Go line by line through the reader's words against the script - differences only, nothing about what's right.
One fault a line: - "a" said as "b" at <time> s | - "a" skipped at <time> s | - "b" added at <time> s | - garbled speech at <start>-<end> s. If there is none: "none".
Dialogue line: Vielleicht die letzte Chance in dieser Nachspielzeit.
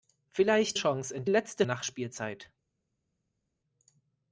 - "die letzte" skipped at 0.8 s
- "dieser" said as "letzte" at 1.3 s